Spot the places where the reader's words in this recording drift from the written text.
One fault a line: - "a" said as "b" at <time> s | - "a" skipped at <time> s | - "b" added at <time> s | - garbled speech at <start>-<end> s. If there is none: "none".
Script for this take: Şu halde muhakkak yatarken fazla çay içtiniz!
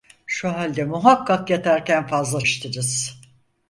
- "çay" skipped at 2.5 s